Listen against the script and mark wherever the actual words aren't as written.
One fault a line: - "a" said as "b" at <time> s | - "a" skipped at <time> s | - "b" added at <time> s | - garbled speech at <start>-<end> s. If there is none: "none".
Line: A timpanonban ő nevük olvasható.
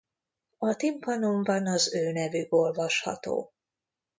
- "az" added at 1.7 s